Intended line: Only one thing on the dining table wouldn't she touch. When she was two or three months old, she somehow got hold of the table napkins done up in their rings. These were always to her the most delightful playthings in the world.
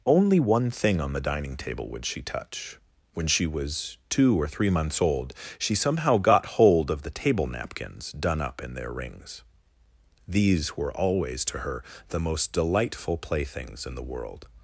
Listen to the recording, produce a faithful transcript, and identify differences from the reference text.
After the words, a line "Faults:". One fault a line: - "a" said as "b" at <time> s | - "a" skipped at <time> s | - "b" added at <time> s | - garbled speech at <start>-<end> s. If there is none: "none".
Only one thing on the dining table would she touch. When she was two or three months old, she somehow got hold of the table napkins done up in their rings. These were always to her the most delightful playthings in the world.
Faults:
- "wouldn't" said as "would" at 1.9 s